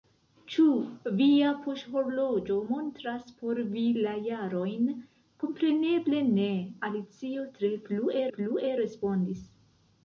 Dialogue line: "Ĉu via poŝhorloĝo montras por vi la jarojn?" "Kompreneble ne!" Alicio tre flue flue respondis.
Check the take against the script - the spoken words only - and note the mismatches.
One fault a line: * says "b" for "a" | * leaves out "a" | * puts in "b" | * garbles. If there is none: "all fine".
all fine